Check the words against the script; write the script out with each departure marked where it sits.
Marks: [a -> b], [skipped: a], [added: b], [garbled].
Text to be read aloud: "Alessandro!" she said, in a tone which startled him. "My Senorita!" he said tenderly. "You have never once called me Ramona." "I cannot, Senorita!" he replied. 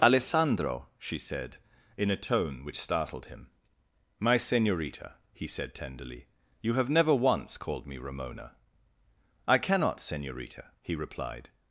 "Alessandro!" she said, in a tone which startled him. "My Senorita!" he said tenderly. "You have never once called me Ramona." "I cannot, Senorita!" he replied.